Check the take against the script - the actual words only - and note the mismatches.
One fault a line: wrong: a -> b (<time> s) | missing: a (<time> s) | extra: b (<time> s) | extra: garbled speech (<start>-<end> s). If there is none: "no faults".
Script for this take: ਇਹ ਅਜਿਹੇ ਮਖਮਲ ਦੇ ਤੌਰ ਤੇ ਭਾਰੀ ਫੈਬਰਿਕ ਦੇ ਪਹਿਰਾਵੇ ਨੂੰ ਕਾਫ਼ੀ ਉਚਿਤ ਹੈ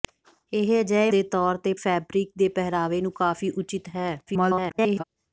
missing: ਮਖਮਲ (1.1 s)
missing: ਭਾਰੀ (1.7 s)
extra: garbled speech (4.3-5.0 s)